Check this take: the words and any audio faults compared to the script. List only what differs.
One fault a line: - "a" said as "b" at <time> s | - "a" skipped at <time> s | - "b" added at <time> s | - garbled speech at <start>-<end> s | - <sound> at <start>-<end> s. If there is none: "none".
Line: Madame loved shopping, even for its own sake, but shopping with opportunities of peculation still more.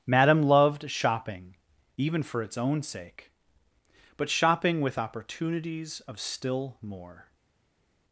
- "peculation" skipped at 6.2 s